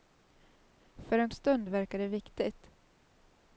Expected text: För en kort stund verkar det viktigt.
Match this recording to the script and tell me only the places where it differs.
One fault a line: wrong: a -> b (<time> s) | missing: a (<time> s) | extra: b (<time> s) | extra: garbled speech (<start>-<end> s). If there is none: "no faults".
missing: kort (1.3 s)